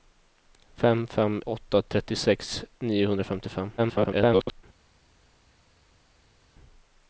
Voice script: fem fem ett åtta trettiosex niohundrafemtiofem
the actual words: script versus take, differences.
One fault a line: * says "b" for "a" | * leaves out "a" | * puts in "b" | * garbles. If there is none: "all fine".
* leaves out "ett"
* garbles